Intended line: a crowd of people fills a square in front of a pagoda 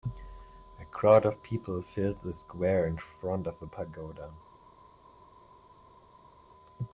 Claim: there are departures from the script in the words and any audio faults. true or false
false